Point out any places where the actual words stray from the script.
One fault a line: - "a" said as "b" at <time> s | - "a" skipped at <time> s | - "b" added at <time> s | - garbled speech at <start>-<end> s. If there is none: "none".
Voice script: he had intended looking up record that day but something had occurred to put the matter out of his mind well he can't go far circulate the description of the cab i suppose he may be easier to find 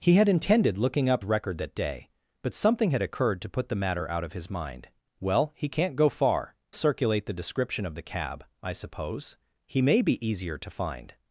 none